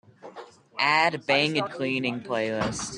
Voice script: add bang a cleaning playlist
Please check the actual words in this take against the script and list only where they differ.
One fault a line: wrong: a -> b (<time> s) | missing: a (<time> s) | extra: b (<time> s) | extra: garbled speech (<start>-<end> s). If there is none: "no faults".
no faults